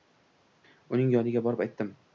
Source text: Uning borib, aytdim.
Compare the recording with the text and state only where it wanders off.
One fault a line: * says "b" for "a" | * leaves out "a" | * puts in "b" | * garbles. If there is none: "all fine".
* puts in "yoniga"